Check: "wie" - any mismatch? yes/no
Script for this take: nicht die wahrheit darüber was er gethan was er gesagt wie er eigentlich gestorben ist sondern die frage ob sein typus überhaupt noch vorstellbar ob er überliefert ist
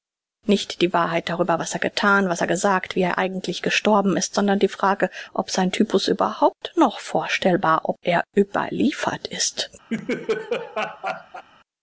no